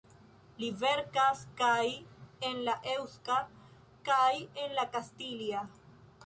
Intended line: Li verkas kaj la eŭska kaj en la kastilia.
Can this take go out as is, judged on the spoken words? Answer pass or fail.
fail